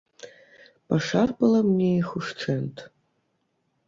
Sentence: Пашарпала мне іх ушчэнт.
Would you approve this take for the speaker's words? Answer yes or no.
yes